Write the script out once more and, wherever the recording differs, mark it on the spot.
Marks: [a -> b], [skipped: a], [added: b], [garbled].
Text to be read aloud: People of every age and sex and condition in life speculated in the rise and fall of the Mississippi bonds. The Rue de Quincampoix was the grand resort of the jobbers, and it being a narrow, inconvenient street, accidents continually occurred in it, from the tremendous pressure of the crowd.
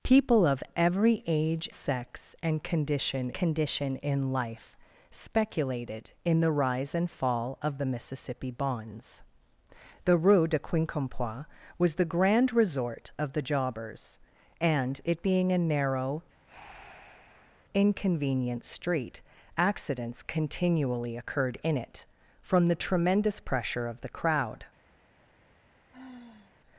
People of every age [skipped: and] sex and condition [added: condition] in life speculated in the rise and fall of the Mississippi bonds. The Rue de Quincampoix was the grand resort of the jobbers, and it being a narrow, inconvenient street, accidents continually occurred in it, from the tremendous pressure of the crowd.